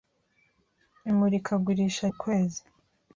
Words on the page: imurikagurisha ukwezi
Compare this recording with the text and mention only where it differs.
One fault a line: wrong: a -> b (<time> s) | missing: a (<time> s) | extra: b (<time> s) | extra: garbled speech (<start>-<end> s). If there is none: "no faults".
no faults